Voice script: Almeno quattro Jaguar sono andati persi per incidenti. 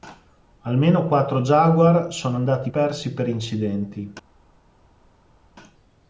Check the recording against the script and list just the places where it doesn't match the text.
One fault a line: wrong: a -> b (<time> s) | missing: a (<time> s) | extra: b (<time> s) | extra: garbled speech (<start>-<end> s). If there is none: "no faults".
no faults